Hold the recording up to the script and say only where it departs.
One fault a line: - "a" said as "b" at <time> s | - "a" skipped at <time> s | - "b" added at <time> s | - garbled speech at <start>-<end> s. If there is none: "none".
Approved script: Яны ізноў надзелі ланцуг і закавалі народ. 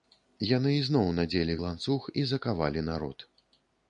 none